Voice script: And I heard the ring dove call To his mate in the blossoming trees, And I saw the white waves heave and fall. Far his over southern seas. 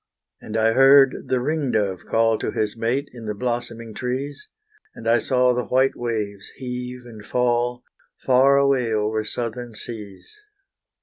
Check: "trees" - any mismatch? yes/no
no